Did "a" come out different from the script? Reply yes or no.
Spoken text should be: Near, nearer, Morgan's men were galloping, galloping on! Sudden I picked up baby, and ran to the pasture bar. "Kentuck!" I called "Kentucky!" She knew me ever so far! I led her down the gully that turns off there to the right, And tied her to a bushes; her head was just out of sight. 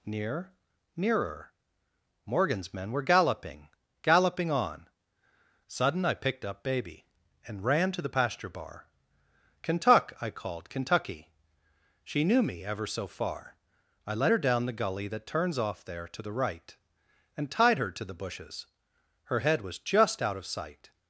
yes